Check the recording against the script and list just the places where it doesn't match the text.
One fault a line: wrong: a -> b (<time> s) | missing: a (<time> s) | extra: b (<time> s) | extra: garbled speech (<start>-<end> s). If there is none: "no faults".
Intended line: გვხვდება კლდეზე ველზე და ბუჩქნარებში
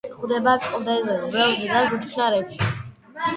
no faults